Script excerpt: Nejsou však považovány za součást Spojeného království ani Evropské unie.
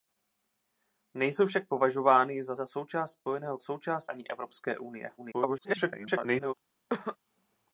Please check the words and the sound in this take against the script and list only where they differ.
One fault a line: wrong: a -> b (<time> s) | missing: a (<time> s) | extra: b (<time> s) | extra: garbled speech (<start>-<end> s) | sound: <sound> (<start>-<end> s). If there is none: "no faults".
extra: za (2.5 s)
wrong: království -> součást (3.6 s)
extra: garbled speech (5.2-6.5 s)
sound: cough (6.9-7.2 s)